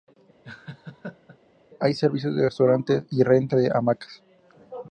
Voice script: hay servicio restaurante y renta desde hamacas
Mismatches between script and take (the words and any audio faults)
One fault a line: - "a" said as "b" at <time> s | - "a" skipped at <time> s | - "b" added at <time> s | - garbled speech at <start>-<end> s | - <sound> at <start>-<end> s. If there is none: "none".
- laugh at 0.4-1.4 s
- "de" added at 2.3 s
- "desde" said as "de" at 3.5 s